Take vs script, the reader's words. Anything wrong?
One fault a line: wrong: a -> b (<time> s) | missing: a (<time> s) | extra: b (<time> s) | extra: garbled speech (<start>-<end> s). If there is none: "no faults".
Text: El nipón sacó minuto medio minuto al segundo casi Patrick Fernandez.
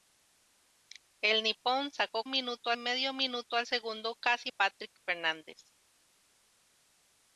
no faults